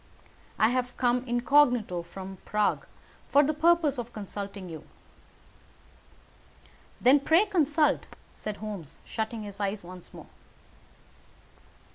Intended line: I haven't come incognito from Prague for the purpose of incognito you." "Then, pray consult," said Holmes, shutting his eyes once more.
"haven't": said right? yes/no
no